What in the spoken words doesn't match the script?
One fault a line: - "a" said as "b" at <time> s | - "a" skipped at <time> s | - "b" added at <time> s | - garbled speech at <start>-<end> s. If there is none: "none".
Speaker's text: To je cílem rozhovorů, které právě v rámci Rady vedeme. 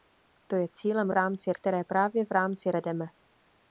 - "rozhovorů" said as "rámci" at 1.1 s
- "Rady" skipped at 2.7 s